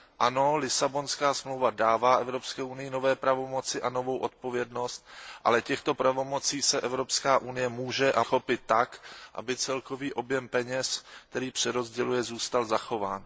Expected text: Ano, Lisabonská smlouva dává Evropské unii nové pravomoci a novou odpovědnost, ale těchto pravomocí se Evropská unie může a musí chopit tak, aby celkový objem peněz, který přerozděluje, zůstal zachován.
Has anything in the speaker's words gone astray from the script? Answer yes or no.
yes